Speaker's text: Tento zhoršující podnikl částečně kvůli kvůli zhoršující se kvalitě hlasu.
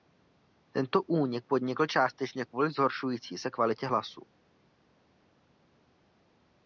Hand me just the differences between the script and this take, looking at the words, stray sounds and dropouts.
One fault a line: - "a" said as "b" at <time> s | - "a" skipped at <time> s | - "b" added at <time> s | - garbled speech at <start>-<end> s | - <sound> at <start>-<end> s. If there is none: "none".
- "zhoršující" said as "únik" at 1.0 s
- "kvůli" skipped at 2.7 s